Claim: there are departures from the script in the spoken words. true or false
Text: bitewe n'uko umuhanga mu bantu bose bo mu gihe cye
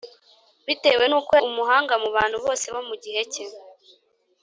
false